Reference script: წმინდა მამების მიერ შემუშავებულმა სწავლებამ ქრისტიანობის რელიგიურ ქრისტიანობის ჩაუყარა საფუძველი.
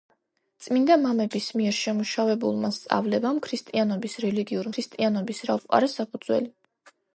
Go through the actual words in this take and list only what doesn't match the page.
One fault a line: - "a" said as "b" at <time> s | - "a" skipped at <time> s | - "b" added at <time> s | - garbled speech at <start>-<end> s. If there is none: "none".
none